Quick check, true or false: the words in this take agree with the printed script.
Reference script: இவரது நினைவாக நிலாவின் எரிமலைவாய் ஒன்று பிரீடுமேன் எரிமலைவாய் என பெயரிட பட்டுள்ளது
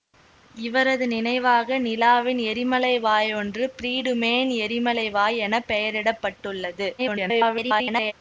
false